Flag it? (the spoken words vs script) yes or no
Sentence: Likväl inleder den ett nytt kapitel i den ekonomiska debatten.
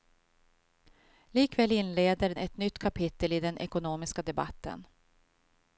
yes